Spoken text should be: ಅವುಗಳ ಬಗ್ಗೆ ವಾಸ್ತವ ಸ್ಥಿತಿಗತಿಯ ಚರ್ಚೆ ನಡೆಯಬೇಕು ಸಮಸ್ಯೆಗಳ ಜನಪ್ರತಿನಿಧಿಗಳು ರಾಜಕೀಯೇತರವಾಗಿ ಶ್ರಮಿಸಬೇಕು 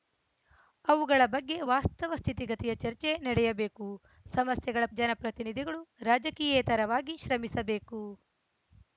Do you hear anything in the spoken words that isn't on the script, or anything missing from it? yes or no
no